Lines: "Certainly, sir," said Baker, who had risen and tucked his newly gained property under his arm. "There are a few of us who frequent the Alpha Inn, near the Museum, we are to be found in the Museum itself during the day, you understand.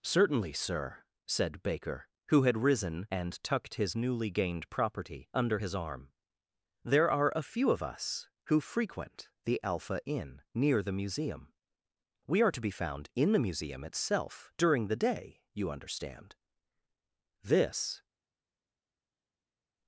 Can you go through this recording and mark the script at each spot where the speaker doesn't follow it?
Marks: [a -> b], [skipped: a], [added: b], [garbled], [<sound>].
"Certainly, sir," said Baker, who had risen and tucked his newly gained property under his arm. "There are a few of us who frequent the Alpha Inn, near the Museum, we are to be found in the Museum itself during the day, you understand. [added: This]